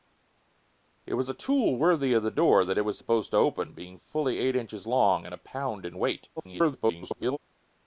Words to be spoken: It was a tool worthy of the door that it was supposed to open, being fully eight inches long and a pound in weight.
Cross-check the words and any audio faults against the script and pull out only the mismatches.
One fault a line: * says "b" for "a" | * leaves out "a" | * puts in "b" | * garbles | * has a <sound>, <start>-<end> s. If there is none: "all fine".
* garbles